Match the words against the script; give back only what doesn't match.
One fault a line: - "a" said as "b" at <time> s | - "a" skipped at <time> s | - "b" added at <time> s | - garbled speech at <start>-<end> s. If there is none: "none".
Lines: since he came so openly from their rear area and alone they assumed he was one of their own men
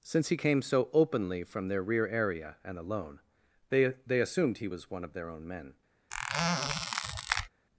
- "they" added at 4.1 s